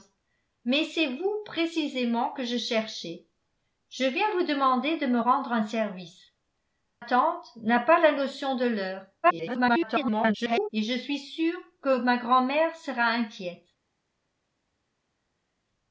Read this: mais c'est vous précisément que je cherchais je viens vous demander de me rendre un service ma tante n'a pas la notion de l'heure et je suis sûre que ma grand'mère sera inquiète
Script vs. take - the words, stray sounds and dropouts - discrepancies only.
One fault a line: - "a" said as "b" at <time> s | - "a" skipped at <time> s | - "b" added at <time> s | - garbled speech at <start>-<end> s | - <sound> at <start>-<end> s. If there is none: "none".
- "ma" skipped at 6.3 s
- garbled speech at 9.2-10.7 s